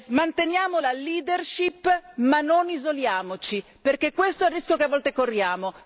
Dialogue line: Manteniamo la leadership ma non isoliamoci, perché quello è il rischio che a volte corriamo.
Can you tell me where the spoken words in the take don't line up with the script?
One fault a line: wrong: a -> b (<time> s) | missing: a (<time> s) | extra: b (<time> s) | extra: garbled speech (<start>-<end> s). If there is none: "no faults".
wrong: quello -> questo (4.1 s)